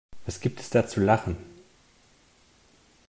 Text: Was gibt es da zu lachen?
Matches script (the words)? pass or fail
pass